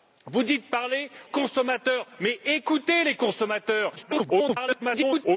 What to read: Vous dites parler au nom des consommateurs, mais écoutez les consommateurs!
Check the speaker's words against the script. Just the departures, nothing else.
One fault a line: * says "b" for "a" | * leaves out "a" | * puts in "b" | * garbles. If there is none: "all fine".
* leaves out "au nom des"
* garbles